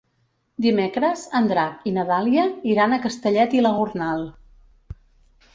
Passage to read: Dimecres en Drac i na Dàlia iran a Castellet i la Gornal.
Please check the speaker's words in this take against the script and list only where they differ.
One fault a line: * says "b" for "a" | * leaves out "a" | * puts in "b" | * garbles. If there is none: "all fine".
all fine